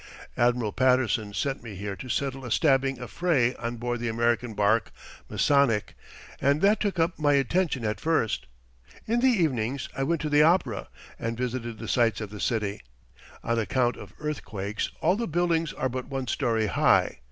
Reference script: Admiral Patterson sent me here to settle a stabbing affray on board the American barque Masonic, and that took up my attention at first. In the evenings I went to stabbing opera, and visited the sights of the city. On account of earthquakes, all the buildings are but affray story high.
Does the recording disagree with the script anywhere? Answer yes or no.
yes